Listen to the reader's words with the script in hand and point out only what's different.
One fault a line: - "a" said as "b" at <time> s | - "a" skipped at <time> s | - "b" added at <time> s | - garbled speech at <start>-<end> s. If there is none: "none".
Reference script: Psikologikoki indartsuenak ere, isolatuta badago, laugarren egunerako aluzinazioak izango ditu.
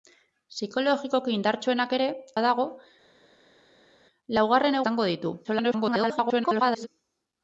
- "isolatuta" skipped at 2.1 s
- "egunerako aluzinazioak" skipped at 4.8 s
- garbled speech at 5.4-6.9 s